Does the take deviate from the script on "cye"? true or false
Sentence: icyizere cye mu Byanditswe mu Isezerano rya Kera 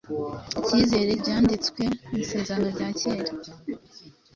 true